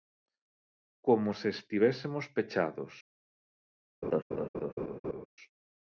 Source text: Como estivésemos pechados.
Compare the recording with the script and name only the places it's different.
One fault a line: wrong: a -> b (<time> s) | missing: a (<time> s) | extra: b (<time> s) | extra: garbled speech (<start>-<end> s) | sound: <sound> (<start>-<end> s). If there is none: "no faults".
extra: se (1.3 s)
sound: laugh (4.0-5.3 s)